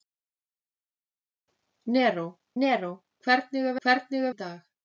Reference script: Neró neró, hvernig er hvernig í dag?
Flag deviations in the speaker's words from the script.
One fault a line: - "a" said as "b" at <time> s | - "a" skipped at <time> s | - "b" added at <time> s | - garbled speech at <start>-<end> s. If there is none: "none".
none